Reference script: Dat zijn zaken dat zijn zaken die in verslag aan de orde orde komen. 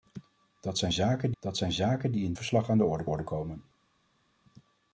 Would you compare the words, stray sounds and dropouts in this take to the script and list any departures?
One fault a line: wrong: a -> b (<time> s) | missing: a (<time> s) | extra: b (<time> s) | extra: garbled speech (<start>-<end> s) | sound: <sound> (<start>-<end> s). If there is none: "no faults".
no faults